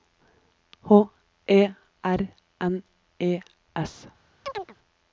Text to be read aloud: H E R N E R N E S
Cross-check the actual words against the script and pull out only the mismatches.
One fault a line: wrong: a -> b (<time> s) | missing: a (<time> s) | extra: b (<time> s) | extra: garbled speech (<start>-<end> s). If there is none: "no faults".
missing: R N E (3.4 s)